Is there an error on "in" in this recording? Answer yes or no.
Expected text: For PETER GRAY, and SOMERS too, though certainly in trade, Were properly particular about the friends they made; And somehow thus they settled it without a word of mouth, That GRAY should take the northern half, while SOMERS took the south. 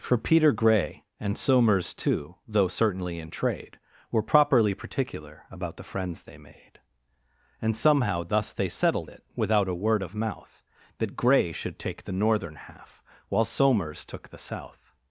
no